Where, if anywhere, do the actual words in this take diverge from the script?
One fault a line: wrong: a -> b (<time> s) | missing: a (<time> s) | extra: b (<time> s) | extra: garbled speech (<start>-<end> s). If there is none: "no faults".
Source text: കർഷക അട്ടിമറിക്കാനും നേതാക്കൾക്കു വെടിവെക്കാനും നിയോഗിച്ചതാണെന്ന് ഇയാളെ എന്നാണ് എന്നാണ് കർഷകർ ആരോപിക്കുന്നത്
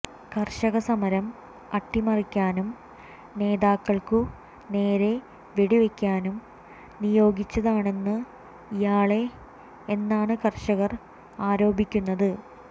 extra: സമരം (0.8 s)
extra: നേരെ (4.7 s)
missing: എന്നാണ് (10.3 s)